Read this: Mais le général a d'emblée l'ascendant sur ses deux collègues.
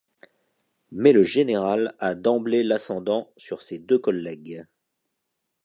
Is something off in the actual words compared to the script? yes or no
no